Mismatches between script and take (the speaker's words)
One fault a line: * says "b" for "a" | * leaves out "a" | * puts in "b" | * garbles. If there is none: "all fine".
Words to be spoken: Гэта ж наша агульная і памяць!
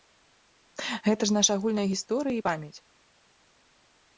* puts in "гісторыя"